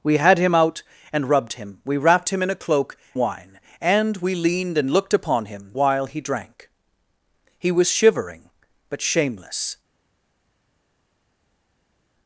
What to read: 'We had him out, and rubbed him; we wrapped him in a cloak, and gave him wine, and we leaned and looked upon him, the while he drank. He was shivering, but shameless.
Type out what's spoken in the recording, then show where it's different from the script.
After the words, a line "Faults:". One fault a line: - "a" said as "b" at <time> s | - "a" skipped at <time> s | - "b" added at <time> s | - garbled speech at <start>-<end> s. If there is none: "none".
'We had him out, and rubbed him; we wrapped him in a cloak, wine, and we leaned and looked upon him, while he drank. He was shivering, but shameless.
Faults:
- "and gave him" skipped at 3.0 s
- "the" skipped at 5.7 s